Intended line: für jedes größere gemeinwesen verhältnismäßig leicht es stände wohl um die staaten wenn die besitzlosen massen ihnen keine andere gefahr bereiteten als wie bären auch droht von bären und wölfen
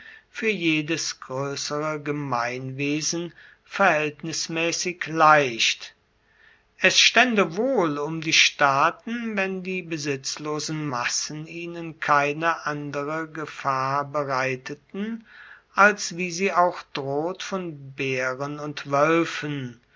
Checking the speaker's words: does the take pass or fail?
fail